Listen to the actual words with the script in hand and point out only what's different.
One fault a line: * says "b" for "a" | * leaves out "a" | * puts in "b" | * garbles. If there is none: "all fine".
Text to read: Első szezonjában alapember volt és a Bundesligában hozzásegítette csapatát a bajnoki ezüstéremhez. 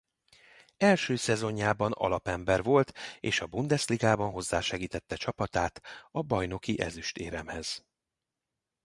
all fine